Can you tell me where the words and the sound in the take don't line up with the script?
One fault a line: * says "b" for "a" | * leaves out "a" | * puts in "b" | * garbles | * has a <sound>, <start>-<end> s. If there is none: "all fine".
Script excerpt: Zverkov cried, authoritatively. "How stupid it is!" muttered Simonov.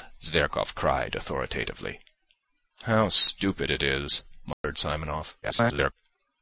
* has a dropout, 4.5-4.6 s
* garbles